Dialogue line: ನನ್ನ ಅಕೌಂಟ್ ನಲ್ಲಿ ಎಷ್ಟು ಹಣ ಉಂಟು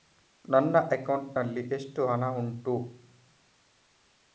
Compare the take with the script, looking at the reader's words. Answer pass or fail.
pass